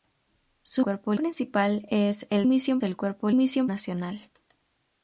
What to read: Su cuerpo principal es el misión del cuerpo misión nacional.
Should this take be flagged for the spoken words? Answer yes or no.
no